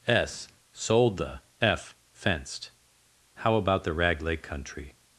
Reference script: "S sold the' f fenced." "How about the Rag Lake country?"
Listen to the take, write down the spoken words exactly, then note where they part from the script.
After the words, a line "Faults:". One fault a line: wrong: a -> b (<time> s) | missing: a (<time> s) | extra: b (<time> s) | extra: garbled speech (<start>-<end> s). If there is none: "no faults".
"S sold the' f fenced." "How about the Rag Lake country?"
Faults:
no faults